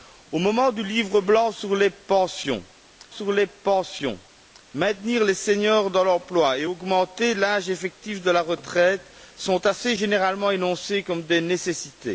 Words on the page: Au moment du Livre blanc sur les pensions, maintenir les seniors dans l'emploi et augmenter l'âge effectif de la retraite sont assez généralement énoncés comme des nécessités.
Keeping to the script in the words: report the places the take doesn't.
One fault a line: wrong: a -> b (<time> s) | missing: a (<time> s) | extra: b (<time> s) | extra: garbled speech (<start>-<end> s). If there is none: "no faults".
extra: sur les pensions (3.1 s)